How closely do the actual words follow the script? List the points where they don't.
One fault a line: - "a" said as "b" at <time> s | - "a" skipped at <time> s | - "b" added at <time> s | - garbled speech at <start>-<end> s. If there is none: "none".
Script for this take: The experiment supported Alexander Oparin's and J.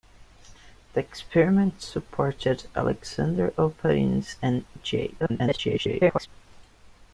- garbled speech at 5.2-6.3 s